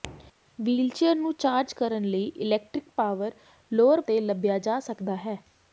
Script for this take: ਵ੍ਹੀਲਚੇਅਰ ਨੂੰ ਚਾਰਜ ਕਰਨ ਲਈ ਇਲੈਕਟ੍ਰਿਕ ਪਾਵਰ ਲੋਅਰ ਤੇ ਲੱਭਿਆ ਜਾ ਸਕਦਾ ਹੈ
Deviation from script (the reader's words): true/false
false